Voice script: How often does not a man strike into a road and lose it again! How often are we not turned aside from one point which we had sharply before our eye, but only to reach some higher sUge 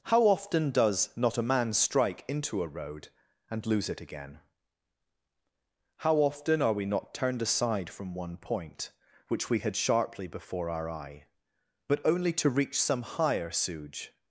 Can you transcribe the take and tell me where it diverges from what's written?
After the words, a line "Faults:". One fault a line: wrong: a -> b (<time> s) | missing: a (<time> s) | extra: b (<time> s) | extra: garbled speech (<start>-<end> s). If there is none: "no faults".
How often does not a man strike into a road and lose it again! How often are we not turned aside from one point which we had sharply before our eye, but only to reach some higher sUge
Faults:
no faults